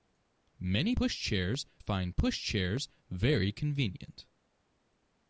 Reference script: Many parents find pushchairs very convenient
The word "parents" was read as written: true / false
false